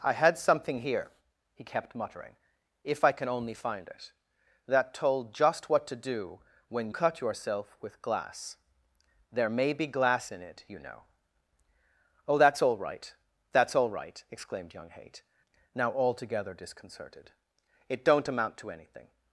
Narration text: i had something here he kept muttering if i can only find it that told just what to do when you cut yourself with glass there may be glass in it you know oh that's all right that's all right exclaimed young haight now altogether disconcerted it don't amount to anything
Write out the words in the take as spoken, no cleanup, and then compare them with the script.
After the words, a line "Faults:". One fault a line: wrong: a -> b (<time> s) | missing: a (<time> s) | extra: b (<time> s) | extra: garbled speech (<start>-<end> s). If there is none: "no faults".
i had something here he kept muttering if i can only find it that told just what to do when cut yourself with glass there may be glass in it you know oh that's all right that's all right exclaimed young haight now altogether disconcerted it don't amount to anything
Faults:
missing: you (6.9 s)